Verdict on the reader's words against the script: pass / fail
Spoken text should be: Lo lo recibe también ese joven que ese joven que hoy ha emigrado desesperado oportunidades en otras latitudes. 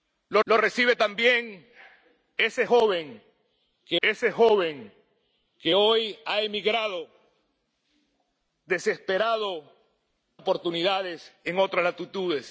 pass